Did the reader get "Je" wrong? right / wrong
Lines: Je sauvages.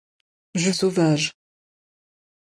right